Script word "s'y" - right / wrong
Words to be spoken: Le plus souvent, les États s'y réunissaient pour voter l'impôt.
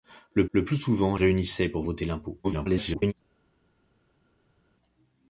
wrong